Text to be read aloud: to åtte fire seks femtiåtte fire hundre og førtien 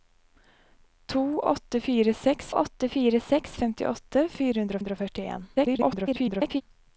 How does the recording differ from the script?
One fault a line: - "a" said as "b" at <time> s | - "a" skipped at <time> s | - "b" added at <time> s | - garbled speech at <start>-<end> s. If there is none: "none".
- "åtte fire seks" added at 2.5 s
- "hundre" added at 4.8 s
- garbled speech at 5.6-6.6 s